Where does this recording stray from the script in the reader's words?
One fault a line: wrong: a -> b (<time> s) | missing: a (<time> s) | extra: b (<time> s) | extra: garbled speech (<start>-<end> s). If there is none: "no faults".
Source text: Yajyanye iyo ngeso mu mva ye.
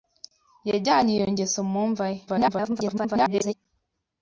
extra: garbled speech (2.3-3.5 s)